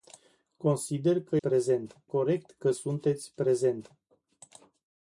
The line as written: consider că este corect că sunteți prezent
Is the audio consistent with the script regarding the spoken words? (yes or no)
no